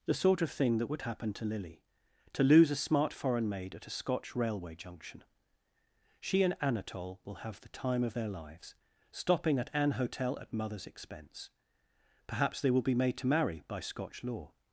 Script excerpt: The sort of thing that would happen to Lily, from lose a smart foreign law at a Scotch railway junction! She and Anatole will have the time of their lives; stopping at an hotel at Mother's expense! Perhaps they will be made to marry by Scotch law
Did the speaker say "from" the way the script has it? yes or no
no